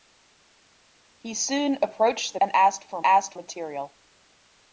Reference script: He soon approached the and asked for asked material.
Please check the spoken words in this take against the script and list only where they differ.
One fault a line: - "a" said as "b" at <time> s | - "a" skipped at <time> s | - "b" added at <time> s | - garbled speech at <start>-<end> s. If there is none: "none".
none